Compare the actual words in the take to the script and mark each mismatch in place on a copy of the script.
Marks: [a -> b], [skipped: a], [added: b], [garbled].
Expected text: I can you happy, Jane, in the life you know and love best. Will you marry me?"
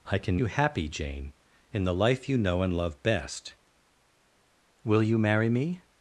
I can you happy, Jane, in the life you know and love best. Will you marry me?"